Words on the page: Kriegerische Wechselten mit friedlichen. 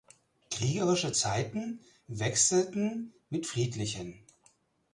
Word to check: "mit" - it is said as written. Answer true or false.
true